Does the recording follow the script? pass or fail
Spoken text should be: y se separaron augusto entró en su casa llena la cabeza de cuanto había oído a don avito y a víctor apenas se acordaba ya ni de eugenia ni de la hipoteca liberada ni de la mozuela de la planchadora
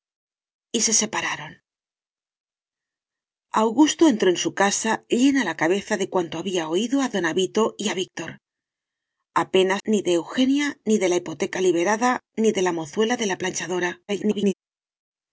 fail